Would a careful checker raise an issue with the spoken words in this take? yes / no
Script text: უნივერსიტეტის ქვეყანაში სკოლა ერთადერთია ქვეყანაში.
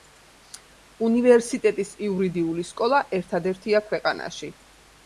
yes